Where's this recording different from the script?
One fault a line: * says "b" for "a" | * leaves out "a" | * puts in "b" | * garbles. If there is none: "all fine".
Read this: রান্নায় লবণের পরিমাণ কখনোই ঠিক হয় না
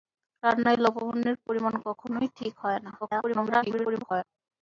* garbles